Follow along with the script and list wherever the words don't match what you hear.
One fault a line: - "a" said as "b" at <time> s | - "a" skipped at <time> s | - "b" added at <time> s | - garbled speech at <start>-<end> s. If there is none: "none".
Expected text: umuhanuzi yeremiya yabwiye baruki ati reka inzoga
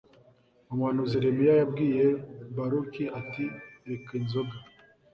none